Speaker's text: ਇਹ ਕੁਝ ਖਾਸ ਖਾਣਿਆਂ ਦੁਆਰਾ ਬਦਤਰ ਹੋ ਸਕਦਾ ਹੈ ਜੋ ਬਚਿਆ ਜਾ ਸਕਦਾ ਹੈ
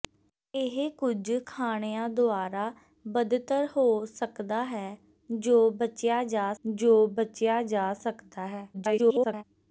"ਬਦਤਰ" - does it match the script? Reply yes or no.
yes